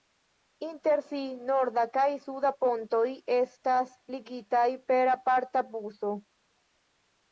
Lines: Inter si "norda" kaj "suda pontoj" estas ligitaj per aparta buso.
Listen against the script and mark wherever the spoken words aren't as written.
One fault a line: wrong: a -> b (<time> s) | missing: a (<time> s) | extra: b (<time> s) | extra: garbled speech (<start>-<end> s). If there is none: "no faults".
no faults